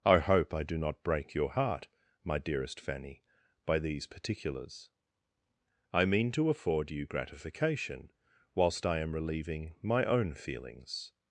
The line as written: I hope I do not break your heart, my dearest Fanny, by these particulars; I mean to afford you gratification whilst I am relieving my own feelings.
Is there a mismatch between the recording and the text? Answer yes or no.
no